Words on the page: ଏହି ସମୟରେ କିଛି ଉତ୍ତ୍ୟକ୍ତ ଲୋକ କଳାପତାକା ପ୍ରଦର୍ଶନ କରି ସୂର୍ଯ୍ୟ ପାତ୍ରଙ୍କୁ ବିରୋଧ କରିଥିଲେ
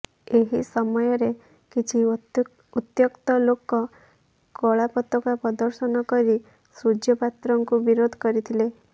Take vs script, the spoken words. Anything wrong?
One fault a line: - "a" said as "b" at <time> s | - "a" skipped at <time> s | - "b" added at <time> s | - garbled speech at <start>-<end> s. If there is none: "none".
none